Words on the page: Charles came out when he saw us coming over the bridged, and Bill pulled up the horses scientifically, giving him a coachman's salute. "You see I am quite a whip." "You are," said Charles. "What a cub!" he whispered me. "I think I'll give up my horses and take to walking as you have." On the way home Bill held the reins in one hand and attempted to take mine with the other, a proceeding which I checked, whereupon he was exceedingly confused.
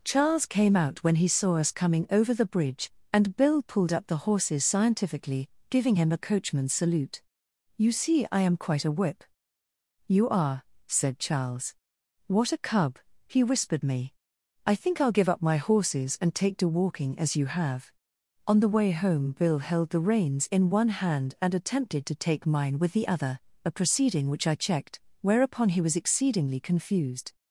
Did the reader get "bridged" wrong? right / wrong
wrong